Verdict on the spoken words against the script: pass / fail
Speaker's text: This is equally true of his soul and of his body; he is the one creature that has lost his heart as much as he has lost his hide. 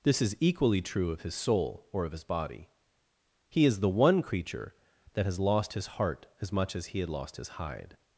fail